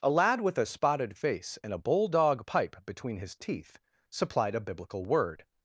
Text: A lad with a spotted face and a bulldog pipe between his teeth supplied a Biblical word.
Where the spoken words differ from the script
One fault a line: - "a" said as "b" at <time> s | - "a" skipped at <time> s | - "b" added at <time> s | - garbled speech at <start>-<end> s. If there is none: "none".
none